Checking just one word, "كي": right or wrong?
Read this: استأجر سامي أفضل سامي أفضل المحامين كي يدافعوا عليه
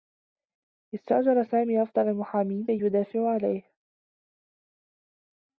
right